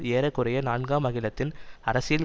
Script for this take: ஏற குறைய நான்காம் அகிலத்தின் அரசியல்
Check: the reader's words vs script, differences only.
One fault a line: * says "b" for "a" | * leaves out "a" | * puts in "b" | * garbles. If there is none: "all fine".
all fine